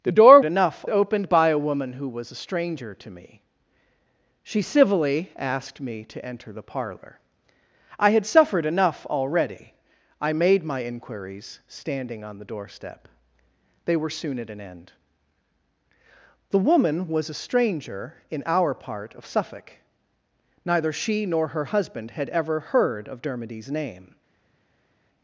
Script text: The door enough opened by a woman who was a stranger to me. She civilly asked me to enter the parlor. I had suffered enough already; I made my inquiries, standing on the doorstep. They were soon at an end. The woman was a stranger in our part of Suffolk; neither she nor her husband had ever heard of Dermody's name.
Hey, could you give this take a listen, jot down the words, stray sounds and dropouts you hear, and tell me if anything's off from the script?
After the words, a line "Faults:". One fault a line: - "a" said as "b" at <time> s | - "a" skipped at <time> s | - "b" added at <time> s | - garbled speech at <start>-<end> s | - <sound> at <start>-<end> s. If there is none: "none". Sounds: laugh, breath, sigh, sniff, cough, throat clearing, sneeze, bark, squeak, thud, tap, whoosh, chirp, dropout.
The door enough opened by a woman who was a stranger to me. She civilly asked me to enter the parlor. I had suffered enough already; I made my inquiries, standing on the doorstep. They were soon at an end. The woman was a stranger in our part of Suffolk; neither she nor her husband had ever heard of Dermody's name.
Faults:
none